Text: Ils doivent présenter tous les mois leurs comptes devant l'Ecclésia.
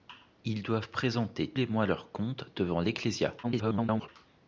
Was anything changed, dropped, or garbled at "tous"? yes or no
yes